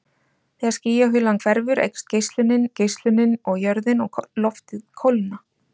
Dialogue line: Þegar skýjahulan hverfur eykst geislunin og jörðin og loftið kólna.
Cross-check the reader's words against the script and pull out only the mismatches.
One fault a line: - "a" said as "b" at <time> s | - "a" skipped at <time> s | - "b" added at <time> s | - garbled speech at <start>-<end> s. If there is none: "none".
- "geislunin" added at 2.8 s